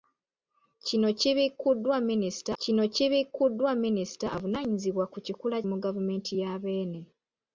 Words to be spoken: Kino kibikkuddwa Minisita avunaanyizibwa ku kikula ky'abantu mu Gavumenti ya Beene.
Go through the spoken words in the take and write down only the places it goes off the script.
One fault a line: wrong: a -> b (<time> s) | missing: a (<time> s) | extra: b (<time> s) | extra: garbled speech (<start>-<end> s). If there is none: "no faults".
extra: kino kibikkuddwa Minisita (2.6 s)
missing: ky'abantu (5.6 s)